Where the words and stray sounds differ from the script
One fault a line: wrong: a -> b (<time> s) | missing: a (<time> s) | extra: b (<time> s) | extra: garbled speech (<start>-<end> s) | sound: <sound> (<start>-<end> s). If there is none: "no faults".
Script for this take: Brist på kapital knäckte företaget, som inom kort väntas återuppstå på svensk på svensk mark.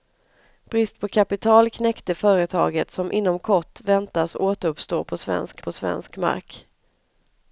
no faults